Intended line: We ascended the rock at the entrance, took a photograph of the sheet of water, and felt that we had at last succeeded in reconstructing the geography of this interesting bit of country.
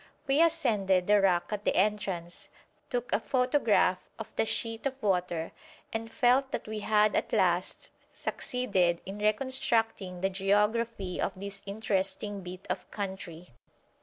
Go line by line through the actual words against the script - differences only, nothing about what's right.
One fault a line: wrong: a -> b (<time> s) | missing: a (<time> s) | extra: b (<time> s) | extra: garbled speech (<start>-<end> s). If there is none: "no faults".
no faults